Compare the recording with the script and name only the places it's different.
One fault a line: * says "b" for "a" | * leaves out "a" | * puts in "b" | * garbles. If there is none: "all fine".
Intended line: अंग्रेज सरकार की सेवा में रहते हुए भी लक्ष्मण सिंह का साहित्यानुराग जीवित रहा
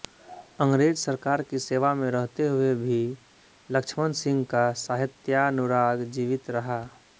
all fine